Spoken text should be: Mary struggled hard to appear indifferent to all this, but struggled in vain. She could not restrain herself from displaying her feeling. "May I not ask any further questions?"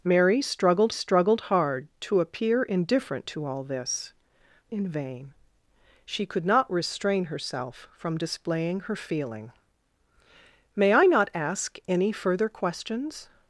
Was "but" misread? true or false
true